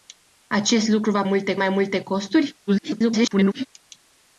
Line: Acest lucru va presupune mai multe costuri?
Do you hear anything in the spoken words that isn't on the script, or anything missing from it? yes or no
yes